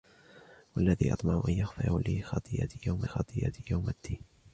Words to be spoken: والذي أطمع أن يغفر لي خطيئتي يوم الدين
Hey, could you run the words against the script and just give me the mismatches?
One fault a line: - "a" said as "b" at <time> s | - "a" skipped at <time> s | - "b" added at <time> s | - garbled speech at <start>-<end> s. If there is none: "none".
- "خطيئتي يوم" added at 3.0 s